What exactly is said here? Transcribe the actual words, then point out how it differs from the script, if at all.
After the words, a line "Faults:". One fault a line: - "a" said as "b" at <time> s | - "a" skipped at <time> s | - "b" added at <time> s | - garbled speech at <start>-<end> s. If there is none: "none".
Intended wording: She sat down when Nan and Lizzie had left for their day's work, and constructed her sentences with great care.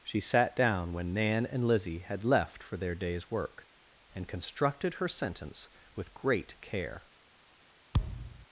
She sat down when Nan and Lizzie had left for their day's work, and constructed her sentence with great care.
Faults:
- "sentences" said as "sentence" at 5.1 s